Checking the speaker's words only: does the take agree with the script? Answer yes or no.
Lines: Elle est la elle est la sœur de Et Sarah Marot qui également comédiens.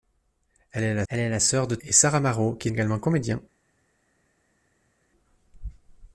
yes